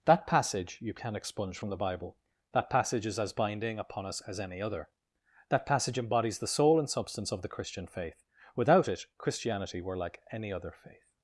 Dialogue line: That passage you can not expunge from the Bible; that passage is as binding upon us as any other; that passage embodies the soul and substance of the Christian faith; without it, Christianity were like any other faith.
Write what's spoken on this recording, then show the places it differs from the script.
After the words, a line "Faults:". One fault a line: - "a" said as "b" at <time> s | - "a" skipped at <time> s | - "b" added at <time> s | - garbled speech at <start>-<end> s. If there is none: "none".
That passage you can expunge from the Bible; that passage is as binding upon us as any other; that passage embodies the soul and substance of the Christian faith; without it, Christianity were like any other faith.
Faults:
- "not" skipped at 1.1 s